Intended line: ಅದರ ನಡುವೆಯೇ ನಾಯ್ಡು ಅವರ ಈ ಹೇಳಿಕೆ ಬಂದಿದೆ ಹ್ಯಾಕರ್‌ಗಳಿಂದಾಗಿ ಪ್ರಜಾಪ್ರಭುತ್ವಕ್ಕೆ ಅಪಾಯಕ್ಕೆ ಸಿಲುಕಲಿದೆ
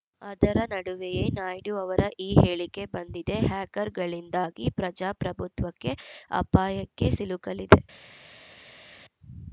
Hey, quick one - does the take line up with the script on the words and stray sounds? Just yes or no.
yes